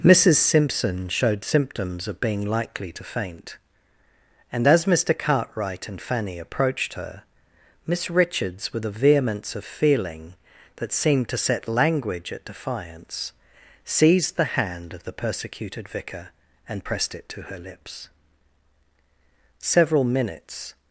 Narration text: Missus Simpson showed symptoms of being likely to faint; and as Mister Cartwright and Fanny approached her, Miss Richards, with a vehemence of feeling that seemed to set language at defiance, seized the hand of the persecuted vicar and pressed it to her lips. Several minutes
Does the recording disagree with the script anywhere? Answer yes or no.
no